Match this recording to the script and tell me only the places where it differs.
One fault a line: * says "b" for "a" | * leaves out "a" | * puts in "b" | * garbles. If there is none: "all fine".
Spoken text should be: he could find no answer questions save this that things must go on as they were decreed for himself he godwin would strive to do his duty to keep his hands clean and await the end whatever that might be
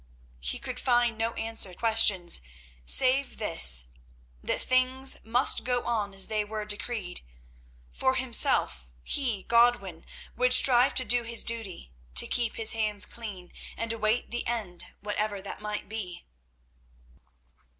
all fine